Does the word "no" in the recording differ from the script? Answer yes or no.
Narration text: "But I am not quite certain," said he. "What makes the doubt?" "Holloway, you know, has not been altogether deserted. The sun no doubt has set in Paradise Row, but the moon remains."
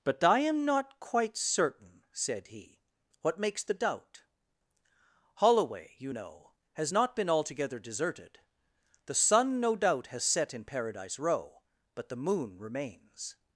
no